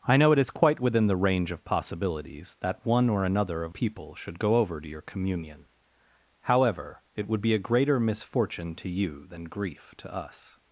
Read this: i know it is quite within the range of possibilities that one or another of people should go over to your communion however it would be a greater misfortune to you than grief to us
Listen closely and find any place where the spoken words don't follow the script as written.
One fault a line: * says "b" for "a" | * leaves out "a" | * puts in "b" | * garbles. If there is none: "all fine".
all fine